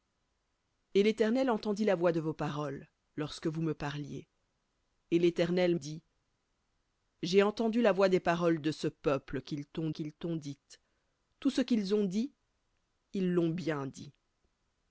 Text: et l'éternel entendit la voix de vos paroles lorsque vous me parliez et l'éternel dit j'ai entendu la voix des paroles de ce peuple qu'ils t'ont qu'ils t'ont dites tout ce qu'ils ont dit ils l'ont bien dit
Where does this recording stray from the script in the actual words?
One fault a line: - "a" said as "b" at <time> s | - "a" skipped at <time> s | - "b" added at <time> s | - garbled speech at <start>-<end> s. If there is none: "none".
none